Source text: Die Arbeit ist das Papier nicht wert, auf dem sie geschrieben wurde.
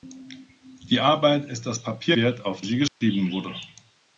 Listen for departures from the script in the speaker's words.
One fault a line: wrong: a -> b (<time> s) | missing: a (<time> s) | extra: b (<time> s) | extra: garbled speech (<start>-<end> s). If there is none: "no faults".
missing: nicht (2.2 s)
missing: dem (2.6 s)